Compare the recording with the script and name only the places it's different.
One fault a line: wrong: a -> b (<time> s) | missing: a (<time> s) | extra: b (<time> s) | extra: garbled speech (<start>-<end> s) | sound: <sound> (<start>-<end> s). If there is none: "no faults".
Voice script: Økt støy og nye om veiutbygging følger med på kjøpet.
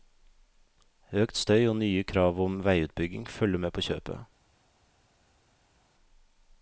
extra: krav (2.0 s)